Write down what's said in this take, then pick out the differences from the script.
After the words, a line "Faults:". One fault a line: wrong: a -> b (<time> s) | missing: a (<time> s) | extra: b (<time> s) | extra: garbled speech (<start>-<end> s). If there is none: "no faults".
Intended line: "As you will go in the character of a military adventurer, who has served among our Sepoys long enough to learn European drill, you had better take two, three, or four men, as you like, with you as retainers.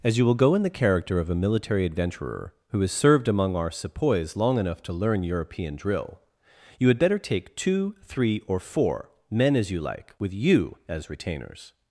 "As you will go in the character of a military adventurer, who has served among our Sepoys long enough to learn European drill, you had better take two, three, or four men, as you like, with you as retainers.
Faults:
no faults